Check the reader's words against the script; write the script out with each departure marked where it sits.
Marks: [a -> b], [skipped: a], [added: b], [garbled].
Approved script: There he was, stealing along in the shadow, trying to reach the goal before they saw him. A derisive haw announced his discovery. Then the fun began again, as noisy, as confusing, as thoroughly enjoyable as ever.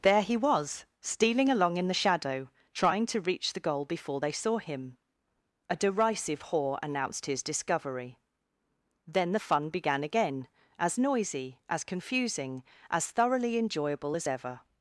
There he was, stealing along in the shadow, trying to reach the goal before they saw him. A derisive haw announced his discovery. Then the fun began again, as noisy, as confusing, as thoroughly enjoyable as ever.